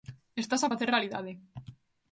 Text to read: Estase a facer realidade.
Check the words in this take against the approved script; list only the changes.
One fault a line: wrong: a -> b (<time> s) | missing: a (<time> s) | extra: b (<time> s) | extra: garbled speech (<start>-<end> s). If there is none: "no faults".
no faults